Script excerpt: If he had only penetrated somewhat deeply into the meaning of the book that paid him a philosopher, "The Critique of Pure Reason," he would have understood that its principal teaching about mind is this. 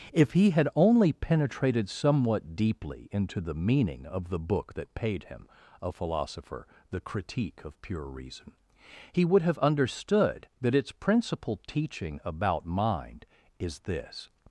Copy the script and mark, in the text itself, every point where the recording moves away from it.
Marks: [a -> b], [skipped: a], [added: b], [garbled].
If he had only penetrated somewhat deeply into the meaning of the book that paid him a philosopher, "The Critique of Pure Reason," he would have understood that its principal teaching about mind is this.